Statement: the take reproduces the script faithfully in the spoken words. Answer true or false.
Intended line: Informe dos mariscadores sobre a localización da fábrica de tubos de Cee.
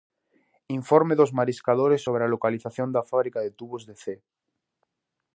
true